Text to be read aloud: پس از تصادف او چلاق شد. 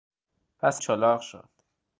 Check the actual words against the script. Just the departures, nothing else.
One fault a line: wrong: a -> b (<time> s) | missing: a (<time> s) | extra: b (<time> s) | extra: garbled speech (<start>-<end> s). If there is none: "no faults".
missing: از تصادف او (0.8 s)